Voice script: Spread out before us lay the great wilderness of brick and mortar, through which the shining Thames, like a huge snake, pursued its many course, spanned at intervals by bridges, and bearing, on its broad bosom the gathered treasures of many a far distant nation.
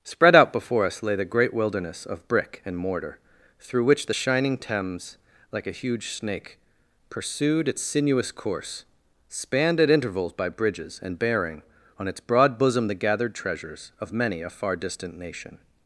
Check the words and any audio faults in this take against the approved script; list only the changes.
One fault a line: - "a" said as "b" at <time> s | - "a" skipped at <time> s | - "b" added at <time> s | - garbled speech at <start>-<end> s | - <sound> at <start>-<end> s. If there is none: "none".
- "many" said as "sinuous" at 7.8 s